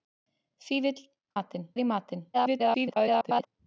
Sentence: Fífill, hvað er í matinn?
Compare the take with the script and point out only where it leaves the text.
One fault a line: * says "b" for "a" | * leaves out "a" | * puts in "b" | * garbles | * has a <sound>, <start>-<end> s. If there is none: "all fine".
* says "matinn" for "hvað"
* garbles